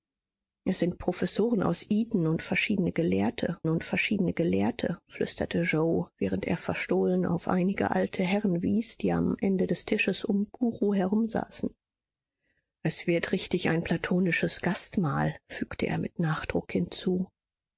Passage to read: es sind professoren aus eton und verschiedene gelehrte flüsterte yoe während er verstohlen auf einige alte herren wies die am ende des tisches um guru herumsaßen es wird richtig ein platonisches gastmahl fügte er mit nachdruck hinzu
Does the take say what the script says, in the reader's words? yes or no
no